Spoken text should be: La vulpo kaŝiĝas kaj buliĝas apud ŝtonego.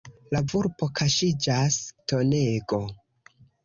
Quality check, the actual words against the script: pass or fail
fail